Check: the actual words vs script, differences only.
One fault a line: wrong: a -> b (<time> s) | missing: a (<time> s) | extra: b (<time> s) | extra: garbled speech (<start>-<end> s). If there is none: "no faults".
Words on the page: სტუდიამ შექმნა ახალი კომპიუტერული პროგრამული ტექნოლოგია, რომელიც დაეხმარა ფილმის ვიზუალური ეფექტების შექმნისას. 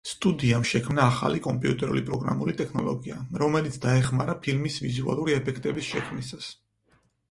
no faults